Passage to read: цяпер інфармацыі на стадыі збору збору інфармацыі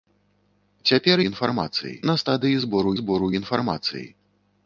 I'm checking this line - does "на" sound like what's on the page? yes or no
yes